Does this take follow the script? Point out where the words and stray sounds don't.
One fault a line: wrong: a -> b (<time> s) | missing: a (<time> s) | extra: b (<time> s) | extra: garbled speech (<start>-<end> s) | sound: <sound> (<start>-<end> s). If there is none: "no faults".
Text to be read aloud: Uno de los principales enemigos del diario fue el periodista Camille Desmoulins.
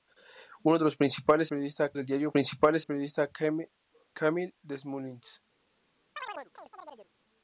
wrong: enemigos -> periodista (1.5 s)
wrong: fue -> principales (2.3 s)
sound: chirp (6.2-7.1 s)